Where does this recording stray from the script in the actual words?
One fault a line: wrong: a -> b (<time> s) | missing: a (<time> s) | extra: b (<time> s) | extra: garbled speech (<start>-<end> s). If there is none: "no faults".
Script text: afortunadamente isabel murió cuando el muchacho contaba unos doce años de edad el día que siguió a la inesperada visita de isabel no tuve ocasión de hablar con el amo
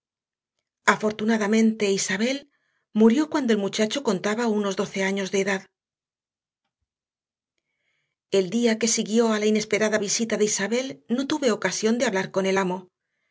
no faults